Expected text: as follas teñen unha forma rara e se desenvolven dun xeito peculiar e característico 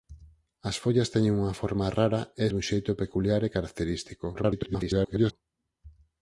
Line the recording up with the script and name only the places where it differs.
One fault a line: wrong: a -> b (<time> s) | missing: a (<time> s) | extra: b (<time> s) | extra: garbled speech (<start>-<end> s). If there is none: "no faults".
missing: se desenvolven (2.5 s)
extra: garbled speech (4.3-5.3 s)